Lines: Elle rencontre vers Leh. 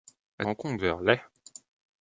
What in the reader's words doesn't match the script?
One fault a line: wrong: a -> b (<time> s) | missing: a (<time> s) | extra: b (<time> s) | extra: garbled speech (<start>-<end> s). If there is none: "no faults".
no faults